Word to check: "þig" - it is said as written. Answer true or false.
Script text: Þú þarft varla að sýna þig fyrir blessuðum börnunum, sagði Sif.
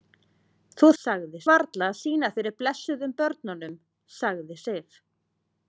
false